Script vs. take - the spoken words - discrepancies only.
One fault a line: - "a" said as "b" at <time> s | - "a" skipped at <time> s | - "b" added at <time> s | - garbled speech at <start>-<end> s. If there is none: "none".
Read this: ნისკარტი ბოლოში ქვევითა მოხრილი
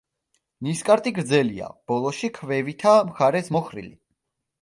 - "გრძელია" added at 1.2 s
- "მხარეს" added at 3.1 s